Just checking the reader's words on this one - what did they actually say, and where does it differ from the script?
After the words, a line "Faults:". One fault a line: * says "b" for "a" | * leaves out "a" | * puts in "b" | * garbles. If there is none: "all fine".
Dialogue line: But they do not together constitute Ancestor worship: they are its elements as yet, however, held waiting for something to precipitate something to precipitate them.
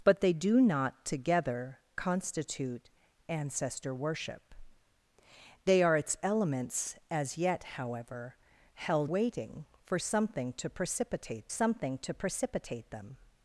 But they do not together constitute Ancestor worship: they are its elements as yet, however, held waiting for something to precipitate something to precipitate them.
Faults:
all fine